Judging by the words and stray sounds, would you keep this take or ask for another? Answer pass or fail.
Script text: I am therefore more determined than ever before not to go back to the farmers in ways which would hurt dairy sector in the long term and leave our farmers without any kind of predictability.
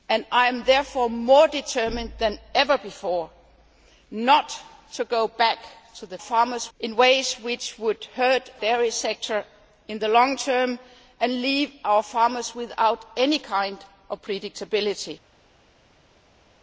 pass